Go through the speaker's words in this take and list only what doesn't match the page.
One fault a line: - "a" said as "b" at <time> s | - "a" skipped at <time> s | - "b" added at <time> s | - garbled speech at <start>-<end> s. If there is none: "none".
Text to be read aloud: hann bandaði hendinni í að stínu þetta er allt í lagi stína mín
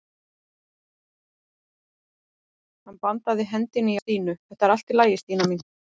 none